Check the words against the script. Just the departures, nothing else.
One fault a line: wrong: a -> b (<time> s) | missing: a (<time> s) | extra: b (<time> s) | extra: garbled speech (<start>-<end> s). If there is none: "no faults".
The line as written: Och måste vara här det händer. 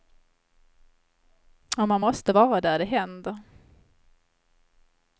extra: man (1.9 s)
wrong: här -> där (2.6 s)